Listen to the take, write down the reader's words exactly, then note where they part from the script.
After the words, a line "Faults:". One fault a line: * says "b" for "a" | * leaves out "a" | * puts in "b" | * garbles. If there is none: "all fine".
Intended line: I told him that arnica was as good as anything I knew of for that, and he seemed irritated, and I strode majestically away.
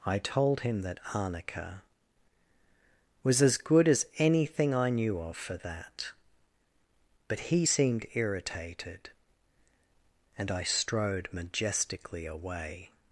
I told him that arnica was as good as anything I knew of for that, but he seemed irritated, and I strode majestically away.
Faults:
* says "but" for "and"